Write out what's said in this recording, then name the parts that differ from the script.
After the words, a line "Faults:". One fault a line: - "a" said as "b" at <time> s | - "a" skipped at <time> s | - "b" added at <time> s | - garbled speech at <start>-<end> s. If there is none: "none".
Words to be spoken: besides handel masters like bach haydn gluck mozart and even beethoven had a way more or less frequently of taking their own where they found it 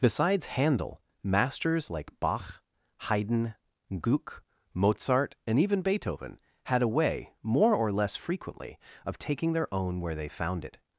besides handel masters like bach haydn gluck mozart and even beethoven had a way more or less frequently of taking their own where they found it
Faults:
none